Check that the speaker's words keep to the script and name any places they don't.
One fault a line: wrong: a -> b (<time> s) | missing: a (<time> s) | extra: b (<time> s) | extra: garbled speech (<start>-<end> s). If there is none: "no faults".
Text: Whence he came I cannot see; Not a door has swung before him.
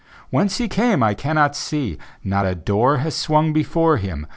no faults